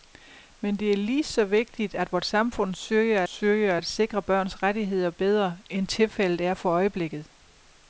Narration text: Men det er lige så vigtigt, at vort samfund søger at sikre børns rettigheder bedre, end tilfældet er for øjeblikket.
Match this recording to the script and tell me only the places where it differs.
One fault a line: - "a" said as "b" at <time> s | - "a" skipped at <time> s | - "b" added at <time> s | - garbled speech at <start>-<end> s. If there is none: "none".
- "søger" added at 3.3 s